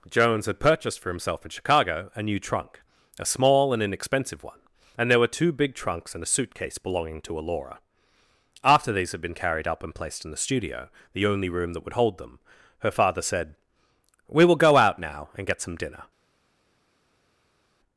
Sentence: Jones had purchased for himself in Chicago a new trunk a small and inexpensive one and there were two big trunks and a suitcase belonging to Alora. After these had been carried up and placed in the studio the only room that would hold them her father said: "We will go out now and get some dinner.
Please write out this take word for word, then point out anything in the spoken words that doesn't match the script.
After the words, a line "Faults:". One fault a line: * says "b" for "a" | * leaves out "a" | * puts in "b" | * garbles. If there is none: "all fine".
Jones had purchased for himself in Chicago a new trunk a small and inexpensive one and there were two big trunks and a suitcase belonging to Alora. After these had been carried up and placed in the studio the only room that would hold them her father said: "We will go out now and get some dinner.
Faults:
all fine